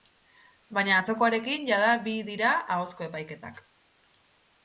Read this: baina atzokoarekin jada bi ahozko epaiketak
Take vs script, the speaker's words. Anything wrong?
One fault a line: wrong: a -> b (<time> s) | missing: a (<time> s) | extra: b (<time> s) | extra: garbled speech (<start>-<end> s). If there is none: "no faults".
extra: dira (2.3 s)